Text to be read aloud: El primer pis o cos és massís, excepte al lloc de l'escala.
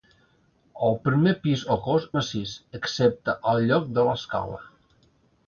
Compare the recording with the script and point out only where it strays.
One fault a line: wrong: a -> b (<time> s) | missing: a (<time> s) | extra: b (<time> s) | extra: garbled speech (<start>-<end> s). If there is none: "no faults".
missing: és (2.1 s)